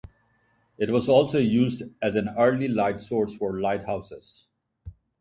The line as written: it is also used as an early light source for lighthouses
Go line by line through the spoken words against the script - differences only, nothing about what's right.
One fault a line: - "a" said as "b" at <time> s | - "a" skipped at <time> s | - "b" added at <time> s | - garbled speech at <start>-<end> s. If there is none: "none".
- "is" said as "was" at 0.9 s